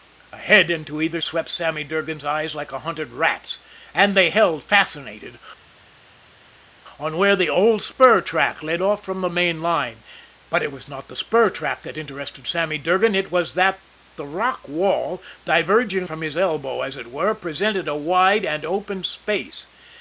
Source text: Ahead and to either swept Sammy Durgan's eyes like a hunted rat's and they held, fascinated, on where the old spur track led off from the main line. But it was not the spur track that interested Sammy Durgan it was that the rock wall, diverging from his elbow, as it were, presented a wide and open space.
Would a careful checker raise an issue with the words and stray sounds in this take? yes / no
no